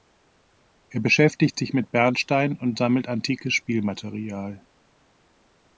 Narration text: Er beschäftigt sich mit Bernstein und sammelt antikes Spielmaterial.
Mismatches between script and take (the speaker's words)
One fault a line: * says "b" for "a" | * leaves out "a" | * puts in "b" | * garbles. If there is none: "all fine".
all fine